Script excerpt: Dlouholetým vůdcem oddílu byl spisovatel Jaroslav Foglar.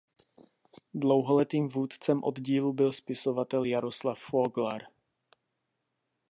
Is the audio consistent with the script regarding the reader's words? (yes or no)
yes